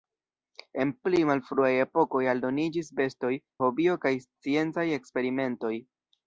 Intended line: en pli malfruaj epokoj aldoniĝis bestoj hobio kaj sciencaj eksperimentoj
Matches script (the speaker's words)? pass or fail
pass